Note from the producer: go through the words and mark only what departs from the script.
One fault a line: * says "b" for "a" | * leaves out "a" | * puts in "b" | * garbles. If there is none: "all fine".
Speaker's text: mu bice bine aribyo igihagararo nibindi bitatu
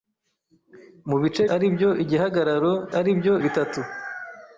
* leaves out "bine"
* says "aribyo" for "nibindi"